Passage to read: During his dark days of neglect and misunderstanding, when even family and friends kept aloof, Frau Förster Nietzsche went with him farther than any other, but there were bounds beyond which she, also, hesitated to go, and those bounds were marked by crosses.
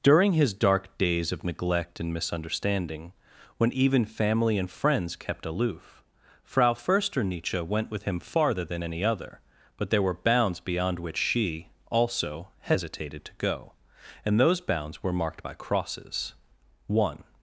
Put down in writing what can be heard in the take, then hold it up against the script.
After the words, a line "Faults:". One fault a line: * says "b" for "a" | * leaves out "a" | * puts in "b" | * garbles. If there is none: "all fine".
During his dark days of neglect and misunderstanding, when even family and friends kept aloof, Frau Förster Nietzsche went with him farther than any other, but there were bounds beyond which she, also, hesitated to go, and those bounds were marked by crosses. One
Faults:
* puts in "One"